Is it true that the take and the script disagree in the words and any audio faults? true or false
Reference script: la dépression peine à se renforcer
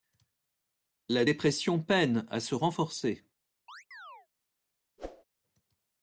true